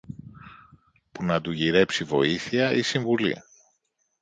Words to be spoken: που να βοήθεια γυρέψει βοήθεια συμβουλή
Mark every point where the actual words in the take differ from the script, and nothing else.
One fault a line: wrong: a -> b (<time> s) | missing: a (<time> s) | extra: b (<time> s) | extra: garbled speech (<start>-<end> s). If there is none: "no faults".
wrong: βοήθεια -> του (1.4 s)
extra: ή (2.7 s)